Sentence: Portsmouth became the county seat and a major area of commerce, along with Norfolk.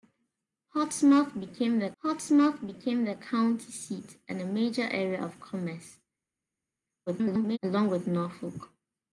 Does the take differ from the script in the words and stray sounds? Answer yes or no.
yes